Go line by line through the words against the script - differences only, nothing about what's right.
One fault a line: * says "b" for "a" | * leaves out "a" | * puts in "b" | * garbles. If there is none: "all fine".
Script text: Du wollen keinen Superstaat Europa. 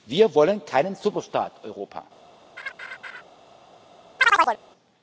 * says "Wir" for "Du"